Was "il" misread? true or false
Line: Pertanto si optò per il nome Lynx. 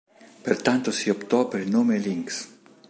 false